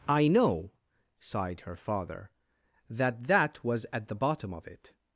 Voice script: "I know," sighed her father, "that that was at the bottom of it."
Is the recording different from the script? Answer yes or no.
no